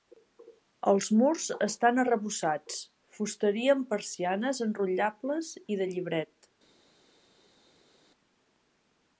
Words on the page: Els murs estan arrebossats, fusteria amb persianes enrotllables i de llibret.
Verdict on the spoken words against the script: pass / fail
pass